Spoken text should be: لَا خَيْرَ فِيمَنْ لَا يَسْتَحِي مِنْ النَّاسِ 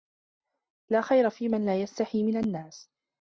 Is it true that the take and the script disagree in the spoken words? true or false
false